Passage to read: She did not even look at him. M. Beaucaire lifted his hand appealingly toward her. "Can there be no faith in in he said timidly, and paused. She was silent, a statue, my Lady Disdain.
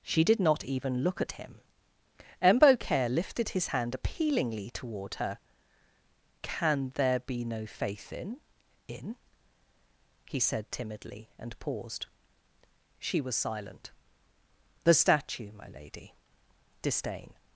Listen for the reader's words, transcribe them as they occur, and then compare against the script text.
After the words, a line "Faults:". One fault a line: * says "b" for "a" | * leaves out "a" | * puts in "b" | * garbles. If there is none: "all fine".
She did not even look at him. M. Beaucaire lifted his hand appealingly toward her. "Can there be no faith in in he said timidly, and paused. She was silent, the statue, my Lady Disdain.
Faults:
* says "the" for "a"